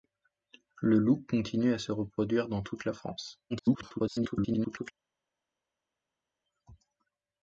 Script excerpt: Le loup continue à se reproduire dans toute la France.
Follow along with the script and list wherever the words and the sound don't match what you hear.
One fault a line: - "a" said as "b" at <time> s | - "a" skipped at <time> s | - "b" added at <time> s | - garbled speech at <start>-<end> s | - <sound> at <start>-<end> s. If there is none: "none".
- garbled speech at 3.5-4.9 s